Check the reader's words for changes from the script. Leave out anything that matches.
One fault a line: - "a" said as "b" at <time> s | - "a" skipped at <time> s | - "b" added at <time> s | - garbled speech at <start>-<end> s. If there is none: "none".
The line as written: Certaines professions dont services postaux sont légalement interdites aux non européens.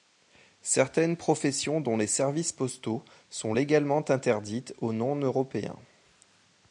- "les" added at 1.9 s